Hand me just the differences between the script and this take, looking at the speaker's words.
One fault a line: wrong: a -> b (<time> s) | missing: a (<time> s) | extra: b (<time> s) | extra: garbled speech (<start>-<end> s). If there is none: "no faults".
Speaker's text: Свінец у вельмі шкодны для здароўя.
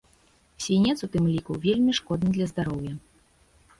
extra: тым ліку (1.2 s)